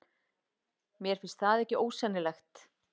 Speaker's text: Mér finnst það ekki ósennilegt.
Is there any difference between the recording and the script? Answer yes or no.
no